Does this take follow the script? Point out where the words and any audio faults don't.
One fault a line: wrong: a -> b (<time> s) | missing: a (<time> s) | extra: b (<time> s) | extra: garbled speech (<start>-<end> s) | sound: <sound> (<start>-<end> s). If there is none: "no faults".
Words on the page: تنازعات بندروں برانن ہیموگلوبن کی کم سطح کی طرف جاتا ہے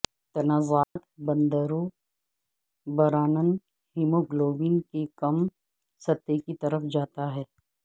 sound: dropout (0.8-1.0 s)